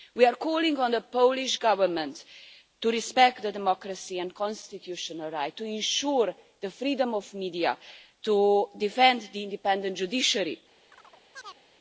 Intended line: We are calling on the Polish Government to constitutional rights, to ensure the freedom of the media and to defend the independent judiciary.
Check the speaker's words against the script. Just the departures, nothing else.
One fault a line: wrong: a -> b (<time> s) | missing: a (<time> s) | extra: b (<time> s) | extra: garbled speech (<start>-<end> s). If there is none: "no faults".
extra: respect democracy and (2.9 s)